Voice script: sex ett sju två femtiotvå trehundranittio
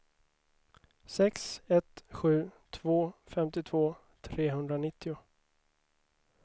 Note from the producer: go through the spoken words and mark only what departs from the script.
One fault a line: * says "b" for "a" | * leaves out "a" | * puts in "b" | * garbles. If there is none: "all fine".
all fine